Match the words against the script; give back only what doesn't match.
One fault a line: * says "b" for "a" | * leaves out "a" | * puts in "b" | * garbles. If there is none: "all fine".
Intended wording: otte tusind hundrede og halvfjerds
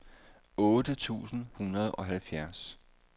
all fine